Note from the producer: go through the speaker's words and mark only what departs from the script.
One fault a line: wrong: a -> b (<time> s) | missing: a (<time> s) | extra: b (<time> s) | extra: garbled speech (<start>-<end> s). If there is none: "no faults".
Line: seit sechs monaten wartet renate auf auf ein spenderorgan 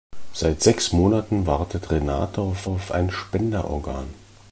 no faults